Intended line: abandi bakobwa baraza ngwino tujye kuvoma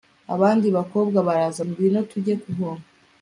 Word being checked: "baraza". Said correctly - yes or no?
yes